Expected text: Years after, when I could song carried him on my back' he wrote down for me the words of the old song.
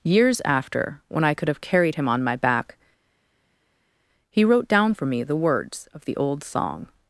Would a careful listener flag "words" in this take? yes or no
no